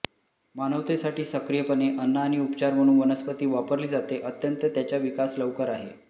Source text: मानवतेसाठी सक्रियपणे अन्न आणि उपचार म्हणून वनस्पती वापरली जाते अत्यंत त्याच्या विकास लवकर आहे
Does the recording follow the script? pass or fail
pass